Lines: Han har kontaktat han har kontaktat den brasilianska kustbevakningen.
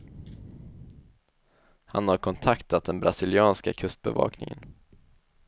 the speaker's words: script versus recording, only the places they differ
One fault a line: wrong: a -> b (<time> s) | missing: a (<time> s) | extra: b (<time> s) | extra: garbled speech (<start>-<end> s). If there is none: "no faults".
missing: han har kontaktat (2.8 s)